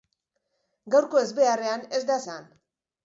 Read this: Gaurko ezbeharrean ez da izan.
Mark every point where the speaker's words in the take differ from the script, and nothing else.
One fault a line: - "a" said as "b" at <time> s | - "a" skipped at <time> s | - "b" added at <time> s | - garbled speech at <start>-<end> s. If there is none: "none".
none